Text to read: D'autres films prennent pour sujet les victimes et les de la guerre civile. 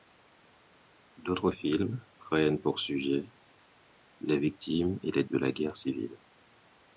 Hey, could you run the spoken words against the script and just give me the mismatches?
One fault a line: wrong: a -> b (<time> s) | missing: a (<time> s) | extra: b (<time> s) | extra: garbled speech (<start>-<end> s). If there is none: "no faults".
no faults